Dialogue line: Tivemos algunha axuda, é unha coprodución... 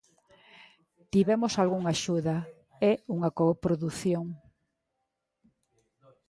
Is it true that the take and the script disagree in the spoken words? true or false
false